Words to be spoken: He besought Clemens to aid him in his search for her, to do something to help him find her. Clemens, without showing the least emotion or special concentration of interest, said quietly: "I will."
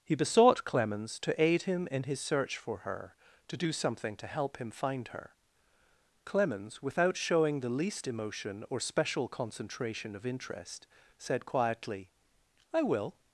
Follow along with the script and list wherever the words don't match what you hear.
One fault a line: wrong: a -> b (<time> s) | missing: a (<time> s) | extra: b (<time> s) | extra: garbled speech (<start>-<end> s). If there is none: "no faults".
no faults